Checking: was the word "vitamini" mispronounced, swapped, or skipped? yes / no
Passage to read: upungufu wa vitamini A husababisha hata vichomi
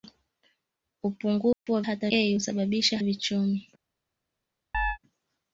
yes